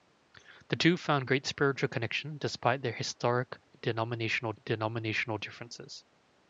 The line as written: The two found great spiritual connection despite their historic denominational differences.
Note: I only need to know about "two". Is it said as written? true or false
true